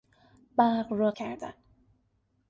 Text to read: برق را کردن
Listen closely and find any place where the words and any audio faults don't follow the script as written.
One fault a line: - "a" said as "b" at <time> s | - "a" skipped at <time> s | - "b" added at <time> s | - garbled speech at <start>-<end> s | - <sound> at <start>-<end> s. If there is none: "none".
none